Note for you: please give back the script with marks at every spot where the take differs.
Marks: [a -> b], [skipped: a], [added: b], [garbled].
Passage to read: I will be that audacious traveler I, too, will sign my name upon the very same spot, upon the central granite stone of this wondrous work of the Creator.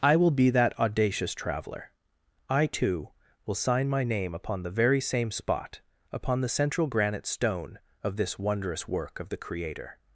I will be that audacious traveler I, too, will sign my name upon the very same spot, upon the central granite stone of this wondrous work of the Creator.